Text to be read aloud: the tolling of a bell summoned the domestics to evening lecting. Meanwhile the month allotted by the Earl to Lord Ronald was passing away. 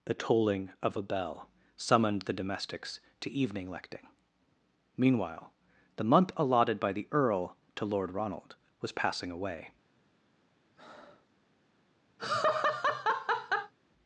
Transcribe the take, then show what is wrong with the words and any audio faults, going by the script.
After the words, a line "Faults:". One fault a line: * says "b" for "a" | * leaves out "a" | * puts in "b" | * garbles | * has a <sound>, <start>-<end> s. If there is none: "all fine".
the tolling of a bell summoned the domestics to evening lecting. Meanwhile the month allotted by the Earl to Lord Ronald was passing away.
Faults:
* has a breath, 10.7-11.3 s
* has a laugh, 12.2-13.7 s